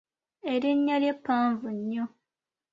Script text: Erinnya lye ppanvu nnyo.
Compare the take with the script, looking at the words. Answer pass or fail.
pass